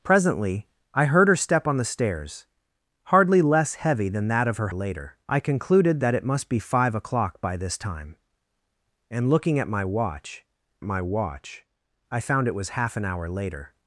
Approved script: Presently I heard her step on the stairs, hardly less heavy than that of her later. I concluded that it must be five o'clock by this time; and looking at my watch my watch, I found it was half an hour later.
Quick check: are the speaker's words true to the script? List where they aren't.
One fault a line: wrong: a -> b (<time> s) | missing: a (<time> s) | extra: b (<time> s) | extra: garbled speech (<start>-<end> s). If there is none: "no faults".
no faults